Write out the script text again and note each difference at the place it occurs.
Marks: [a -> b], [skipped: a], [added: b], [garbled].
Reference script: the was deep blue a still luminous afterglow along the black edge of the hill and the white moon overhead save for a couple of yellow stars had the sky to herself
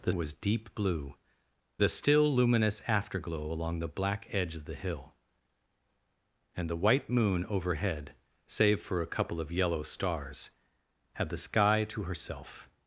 the was deep blue a still luminous afterglow along the black edge of the hill and the white moon overhead save for a couple of yellow stars had the sky to herself